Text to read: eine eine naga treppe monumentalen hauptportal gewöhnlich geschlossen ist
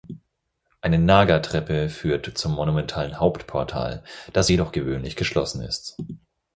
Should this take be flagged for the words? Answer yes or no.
yes